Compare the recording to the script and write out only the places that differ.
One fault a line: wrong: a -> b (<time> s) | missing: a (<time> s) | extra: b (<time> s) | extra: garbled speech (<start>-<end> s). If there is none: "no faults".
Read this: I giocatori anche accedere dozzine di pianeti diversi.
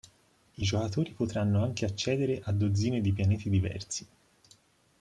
extra: potranno (1.1 s)
extra: a (2.4 s)